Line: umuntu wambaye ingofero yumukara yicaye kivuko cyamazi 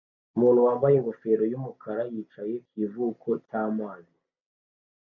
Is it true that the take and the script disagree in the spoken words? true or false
false